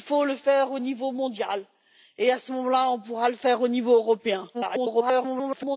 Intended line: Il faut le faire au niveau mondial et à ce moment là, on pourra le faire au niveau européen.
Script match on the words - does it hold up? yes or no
no